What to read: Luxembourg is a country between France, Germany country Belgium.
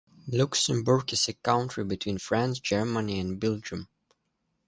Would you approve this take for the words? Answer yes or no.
no